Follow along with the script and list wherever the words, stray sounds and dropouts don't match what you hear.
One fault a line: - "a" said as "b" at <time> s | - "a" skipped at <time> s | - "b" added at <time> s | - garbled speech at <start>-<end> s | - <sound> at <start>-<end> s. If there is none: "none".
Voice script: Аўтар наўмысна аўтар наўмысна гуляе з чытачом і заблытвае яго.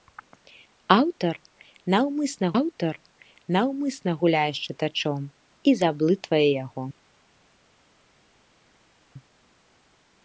none